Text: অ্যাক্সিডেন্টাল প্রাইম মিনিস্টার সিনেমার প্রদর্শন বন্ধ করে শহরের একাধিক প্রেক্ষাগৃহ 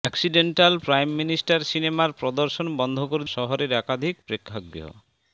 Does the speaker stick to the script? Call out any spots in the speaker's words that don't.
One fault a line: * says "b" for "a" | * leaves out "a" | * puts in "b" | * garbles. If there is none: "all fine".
all fine